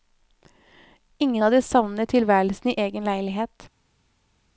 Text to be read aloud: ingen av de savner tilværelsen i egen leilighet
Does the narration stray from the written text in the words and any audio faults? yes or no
no